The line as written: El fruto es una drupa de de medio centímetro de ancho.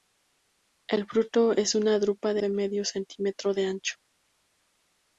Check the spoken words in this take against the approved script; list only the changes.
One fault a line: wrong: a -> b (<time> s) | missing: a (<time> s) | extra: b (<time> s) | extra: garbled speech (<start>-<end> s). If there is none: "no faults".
no faults